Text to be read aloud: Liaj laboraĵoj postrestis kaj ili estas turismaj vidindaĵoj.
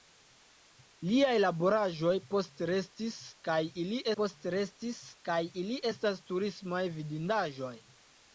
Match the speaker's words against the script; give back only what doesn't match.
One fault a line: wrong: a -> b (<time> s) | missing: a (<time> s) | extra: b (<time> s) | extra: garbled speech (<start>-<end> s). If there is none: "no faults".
extra: postrestis kaj ili (4.2 s)